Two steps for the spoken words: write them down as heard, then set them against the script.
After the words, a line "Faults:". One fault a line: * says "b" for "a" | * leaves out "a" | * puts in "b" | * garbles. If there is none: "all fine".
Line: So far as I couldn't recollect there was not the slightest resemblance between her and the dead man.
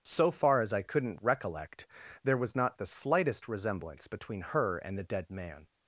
So far as I couldn't recollect there was not the slightest resemblance between her and the dead man.
Faults:
all fine